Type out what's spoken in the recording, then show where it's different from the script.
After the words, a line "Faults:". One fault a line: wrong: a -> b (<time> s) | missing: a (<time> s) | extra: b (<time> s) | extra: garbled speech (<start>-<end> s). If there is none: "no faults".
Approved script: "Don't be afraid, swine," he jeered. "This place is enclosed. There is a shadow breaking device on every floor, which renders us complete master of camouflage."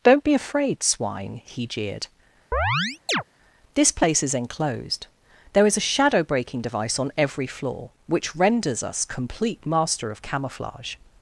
"Don't be afraid, swine," he jeered. "This place is enclosed. There is a shadow breaking device on every floor, which renders us complete master of camouflage."
Faults:
no faults